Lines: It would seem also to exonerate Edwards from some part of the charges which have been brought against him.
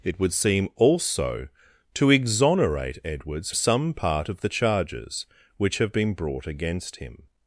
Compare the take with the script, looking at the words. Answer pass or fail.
fail